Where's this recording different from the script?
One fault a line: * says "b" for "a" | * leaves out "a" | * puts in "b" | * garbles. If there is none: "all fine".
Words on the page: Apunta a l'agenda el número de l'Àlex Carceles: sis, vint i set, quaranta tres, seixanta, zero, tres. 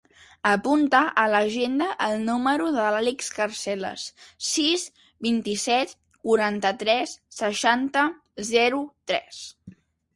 all fine